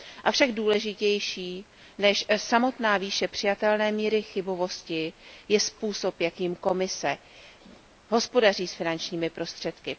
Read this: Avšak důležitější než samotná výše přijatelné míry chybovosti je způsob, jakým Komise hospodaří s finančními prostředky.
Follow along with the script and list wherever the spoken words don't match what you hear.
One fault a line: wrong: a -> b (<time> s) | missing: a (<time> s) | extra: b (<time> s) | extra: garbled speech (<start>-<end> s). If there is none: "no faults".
no faults